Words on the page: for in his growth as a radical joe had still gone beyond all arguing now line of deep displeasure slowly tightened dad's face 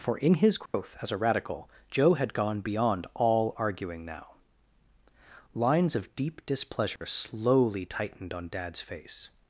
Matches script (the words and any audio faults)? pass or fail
fail